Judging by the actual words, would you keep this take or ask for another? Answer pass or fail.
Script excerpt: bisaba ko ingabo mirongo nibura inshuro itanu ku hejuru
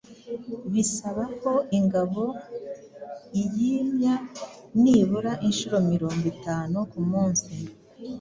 fail